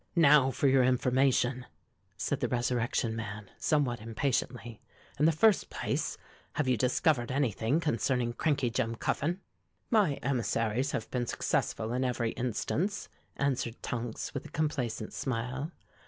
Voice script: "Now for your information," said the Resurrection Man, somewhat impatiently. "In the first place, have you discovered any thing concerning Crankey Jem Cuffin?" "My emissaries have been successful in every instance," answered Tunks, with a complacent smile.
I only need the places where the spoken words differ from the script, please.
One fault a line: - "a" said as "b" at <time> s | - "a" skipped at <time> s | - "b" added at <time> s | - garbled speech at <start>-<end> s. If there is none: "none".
none